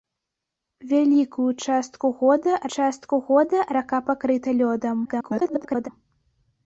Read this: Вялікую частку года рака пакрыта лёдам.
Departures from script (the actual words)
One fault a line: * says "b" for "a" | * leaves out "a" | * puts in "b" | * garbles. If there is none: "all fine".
* puts in "частку года"
* garbles